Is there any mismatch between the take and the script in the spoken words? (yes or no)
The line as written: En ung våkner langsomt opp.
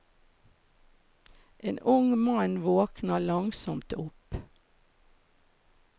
yes